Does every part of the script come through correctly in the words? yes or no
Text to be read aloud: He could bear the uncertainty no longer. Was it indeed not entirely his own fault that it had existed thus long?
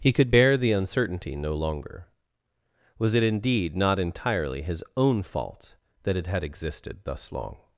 yes